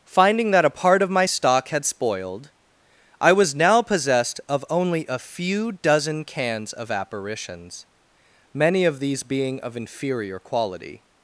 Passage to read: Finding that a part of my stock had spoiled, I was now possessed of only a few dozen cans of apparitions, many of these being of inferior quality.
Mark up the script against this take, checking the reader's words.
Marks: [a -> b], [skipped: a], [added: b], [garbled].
Finding that a part of my stock had spoiled, I was now possessed of only a few dozen cans of apparitions, many of these being of inferior quality.